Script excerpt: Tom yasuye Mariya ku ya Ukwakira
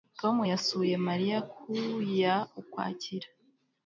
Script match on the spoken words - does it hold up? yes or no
yes